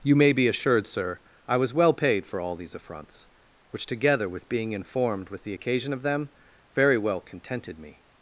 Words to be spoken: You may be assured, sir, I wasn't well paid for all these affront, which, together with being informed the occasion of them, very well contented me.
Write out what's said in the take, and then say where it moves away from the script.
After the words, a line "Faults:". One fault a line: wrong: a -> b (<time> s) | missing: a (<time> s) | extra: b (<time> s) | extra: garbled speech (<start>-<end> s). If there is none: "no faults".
You may be assured, sir, I was well paid for all these affronts, which, together with being informed with the occasion of them, very well contented me.
Faults:
wrong: wasn't -> was (1.6 s)
wrong: affront -> affronts (2.7 s)
extra: with (5.3 s)